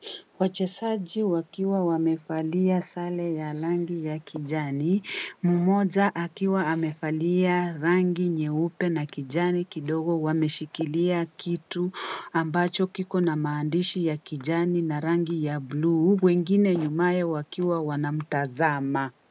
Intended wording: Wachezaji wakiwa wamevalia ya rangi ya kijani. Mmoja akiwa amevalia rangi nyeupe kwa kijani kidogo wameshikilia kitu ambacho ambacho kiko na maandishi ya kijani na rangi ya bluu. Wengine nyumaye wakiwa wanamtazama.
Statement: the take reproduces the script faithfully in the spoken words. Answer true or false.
false